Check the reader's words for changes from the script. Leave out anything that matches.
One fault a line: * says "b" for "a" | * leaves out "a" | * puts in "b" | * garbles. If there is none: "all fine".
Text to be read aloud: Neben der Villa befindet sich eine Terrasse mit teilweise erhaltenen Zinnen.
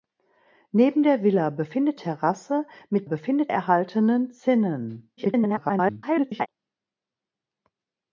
* leaves out "sich eine"
* says "befindet" for "teilweise"
* garbles